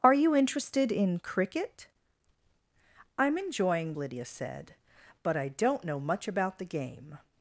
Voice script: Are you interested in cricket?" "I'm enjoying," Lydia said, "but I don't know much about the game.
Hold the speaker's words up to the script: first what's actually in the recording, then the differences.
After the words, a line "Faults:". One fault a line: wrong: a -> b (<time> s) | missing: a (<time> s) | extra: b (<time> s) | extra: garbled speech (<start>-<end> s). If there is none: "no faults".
Are you interested in cricket?" "I'm enjoying," Lydia said, "but I don't know much about the game.
Faults:
no faults